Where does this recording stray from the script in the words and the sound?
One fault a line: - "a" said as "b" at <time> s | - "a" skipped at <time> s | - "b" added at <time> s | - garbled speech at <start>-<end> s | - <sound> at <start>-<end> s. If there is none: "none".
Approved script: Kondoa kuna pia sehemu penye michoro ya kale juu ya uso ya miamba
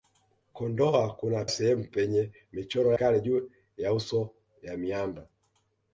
- "pia" skipped at 1.4 s
- "ya" skipped at 2.9 s